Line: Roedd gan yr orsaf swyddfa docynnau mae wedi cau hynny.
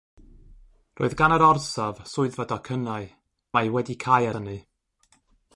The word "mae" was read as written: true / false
true